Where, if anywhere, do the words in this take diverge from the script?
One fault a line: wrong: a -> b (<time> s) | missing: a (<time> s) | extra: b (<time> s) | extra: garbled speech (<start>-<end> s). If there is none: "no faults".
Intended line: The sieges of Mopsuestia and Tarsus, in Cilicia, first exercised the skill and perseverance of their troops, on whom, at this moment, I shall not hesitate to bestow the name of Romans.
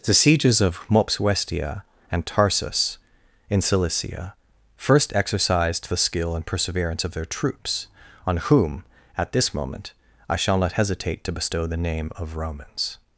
no faults